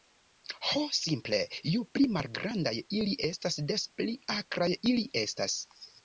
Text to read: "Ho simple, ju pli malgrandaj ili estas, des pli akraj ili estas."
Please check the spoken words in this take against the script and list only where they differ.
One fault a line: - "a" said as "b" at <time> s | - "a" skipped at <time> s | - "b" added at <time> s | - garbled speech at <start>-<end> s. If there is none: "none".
none